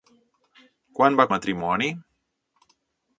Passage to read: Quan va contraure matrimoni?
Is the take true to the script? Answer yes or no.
no